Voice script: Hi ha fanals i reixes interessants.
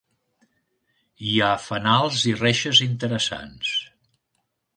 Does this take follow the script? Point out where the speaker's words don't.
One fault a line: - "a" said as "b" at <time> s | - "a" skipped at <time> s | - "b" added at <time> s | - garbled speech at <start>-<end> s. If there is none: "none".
none